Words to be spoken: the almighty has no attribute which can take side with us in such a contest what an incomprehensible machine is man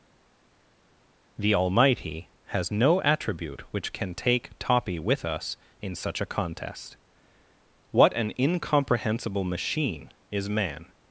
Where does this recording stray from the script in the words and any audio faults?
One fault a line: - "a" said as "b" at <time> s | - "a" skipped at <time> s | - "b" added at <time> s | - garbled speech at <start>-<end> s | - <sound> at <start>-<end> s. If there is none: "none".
- "side" said as "toppy" at 4.6 s